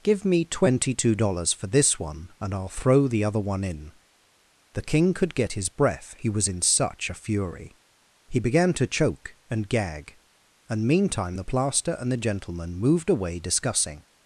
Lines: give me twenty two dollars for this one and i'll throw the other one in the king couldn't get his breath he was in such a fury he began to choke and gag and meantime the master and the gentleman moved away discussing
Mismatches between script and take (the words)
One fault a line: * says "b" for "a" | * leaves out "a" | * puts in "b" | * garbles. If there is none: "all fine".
* says "could" for "couldn't"
* says "plaster" for "master"